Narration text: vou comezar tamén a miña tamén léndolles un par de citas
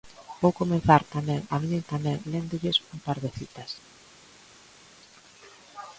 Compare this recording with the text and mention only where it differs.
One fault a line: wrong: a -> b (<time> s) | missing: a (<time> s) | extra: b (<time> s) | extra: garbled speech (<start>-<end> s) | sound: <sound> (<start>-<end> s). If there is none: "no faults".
no faults